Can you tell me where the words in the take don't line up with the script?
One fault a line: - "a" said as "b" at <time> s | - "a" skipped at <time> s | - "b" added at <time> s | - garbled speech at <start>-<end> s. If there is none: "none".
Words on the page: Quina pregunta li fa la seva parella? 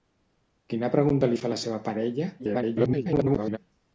- garbled speech at 2.4-3.6 s